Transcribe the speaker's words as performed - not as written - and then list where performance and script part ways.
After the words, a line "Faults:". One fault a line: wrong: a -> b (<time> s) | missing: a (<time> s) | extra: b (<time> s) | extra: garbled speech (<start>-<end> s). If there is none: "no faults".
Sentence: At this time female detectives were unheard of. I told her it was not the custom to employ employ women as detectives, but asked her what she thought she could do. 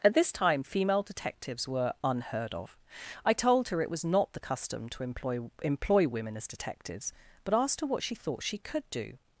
At this time female detectives were unheard of. I told her it was not the custom to employ employ women as detectives, but asked her what she thought she could do.
Faults:
no faults